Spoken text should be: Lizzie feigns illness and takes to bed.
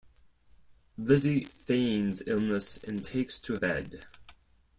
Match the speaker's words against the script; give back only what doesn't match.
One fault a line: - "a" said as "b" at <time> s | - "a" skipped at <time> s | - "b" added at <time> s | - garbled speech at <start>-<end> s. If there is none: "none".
none